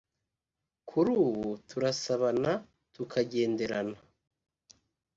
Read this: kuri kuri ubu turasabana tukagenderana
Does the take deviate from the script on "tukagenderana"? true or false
false